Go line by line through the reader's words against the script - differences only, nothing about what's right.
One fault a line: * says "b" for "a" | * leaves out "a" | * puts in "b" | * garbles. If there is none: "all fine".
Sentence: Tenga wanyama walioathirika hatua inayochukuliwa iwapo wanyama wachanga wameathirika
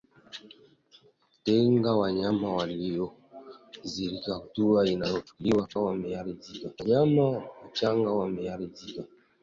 * says "wameathirika" for "iwapo"